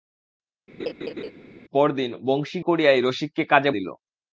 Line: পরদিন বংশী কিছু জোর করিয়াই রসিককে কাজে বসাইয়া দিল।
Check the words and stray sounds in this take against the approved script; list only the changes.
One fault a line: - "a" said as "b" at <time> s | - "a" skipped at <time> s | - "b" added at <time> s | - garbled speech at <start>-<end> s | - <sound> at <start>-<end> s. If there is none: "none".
- laugh at 0.8-1.3 s
- "কিছু জোর" skipped at 2.6 s
- "বসাইয়া" skipped at 3.7 s